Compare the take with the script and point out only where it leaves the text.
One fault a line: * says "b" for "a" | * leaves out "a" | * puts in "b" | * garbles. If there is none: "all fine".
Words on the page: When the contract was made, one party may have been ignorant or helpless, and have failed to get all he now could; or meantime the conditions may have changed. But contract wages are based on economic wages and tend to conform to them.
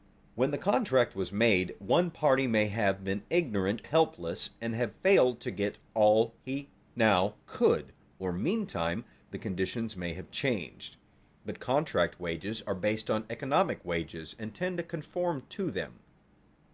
* leaves out "or"